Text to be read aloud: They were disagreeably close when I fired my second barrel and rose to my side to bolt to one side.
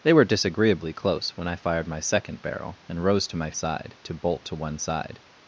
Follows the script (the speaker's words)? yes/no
yes